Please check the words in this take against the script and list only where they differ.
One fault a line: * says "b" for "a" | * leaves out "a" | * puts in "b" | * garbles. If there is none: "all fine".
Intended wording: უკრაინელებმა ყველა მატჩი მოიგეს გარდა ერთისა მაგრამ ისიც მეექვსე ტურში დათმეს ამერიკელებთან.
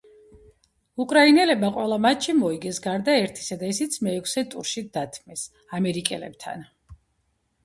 * says "და" for "მაგრამ"